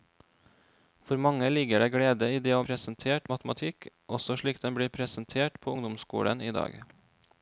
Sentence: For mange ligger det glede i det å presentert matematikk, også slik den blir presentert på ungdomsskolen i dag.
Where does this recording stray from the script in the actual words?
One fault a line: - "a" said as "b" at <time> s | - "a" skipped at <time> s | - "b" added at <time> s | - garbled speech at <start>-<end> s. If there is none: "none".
none